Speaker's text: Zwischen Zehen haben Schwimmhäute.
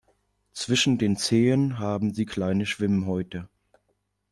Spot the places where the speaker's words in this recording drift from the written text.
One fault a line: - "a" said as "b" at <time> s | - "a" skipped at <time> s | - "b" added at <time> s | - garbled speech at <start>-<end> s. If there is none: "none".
- "den" added at 1.0 s
- "sie kleine" added at 2.1 s